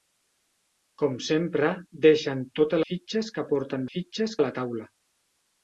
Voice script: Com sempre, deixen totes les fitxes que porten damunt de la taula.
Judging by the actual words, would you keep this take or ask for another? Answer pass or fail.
fail